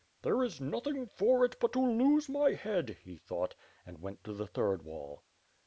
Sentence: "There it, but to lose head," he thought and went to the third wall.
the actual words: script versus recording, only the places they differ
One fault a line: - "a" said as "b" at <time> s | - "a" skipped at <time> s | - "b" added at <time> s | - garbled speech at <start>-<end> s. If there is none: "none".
- "is nothing for" added at 0.4 s
- "my" added at 2.3 s